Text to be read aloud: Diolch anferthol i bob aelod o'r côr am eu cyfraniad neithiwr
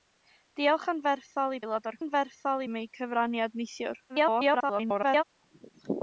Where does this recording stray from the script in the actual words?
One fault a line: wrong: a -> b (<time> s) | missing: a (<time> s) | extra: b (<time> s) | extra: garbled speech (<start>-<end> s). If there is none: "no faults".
missing: bob (1.6 s)
wrong: côr -> anferthol (2.0 s)
extra: garbled speech (4.1-5.2 s)